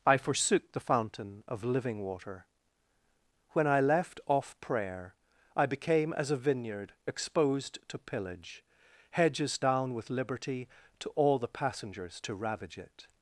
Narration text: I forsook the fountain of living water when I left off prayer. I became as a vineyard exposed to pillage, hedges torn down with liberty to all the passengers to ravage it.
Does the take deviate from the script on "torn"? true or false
true